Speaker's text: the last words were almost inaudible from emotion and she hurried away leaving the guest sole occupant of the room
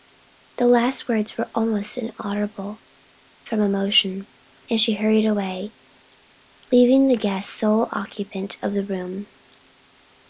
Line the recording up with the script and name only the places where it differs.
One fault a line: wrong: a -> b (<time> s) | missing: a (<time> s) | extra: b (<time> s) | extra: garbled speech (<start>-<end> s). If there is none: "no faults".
no faults